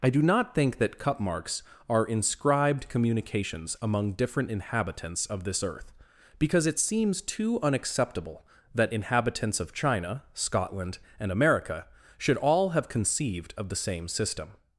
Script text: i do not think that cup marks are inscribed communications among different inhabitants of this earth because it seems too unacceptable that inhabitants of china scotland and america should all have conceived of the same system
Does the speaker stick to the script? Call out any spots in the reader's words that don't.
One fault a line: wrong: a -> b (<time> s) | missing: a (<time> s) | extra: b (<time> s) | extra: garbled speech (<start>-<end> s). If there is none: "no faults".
no faults